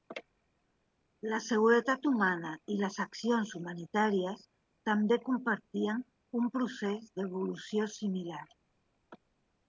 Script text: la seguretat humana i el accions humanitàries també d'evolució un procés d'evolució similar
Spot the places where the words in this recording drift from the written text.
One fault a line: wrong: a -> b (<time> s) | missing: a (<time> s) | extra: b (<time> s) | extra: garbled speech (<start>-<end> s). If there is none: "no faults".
wrong: el -> les (2.8 s)
wrong: d'evolució -> compartien (5.3 s)